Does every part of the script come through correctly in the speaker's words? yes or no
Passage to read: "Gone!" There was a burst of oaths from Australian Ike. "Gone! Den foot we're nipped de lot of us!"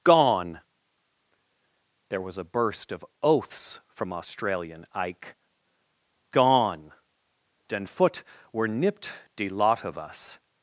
yes